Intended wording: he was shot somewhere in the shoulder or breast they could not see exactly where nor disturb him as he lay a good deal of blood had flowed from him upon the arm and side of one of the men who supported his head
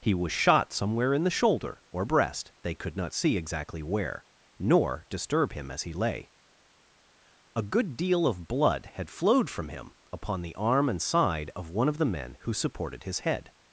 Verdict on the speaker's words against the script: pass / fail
pass